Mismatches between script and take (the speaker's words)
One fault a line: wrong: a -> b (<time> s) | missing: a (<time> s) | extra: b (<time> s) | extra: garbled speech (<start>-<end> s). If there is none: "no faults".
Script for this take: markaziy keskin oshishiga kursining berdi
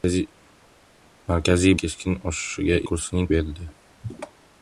no faults